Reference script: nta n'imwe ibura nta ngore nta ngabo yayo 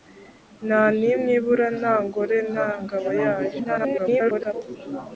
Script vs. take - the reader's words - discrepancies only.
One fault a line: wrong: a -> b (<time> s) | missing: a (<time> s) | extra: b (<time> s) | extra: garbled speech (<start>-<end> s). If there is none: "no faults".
extra: garbled speech (3.6-4.5 s)